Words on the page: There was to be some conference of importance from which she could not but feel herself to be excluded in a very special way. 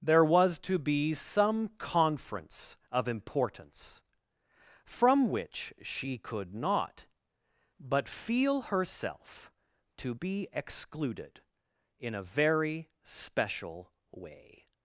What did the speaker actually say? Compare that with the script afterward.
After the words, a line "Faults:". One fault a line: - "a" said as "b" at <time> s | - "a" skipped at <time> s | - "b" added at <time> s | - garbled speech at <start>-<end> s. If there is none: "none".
There was to be some conference of importance from which she could not but feel herself to be excluded in a very special way.
Faults:
none